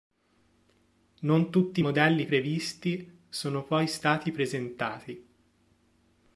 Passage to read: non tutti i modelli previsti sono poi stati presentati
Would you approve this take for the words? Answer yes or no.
yes